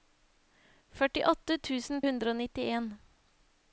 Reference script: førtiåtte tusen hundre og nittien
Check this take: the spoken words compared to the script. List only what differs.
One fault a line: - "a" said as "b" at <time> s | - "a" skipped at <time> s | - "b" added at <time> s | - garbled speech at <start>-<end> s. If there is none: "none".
none